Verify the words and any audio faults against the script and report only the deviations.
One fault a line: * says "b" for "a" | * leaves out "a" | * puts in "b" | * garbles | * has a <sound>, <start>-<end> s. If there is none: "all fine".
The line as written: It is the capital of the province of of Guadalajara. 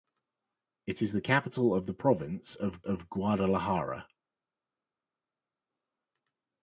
all fine